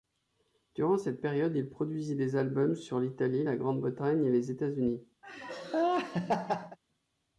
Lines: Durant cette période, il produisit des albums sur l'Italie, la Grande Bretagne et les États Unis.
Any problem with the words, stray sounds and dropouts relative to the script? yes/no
yes